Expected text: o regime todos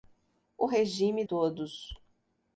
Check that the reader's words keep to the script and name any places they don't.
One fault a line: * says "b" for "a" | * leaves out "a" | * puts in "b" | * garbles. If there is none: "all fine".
all fine